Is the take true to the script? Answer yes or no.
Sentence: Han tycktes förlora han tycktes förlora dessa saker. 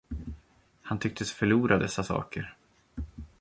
no